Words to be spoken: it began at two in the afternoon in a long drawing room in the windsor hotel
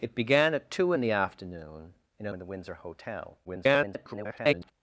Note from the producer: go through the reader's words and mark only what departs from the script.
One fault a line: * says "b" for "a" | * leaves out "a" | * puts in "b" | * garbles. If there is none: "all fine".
* leaves out "long drawing room"
* garbles